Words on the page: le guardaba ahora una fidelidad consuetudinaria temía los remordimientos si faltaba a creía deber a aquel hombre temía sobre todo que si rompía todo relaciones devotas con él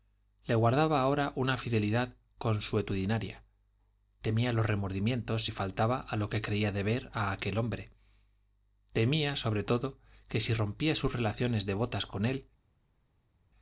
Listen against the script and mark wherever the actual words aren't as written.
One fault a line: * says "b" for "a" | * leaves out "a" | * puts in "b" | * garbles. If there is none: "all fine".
* puts in "lo que"
* says "sus" for "todo"